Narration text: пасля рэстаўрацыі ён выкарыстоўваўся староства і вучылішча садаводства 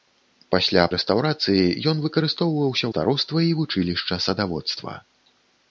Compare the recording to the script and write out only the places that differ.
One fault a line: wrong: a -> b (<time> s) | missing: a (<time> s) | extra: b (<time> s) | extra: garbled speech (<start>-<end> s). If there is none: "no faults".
no faults